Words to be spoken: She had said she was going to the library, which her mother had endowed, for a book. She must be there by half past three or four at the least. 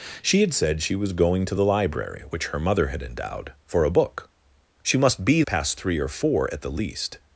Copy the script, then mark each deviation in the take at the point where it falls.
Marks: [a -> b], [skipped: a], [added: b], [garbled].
She had said she was going to the library, which her mother had endowed, for a book. She must be [skipped: there by half] past three or four at the least.